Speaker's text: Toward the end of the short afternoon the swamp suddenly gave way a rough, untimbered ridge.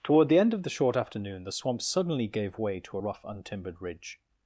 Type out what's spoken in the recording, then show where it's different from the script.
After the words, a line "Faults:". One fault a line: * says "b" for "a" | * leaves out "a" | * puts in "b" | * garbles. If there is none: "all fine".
Toward the end of the short afternoon the swamp suddenly gave way to a rough, untimbered ridge.
Faults:
* puts in "to"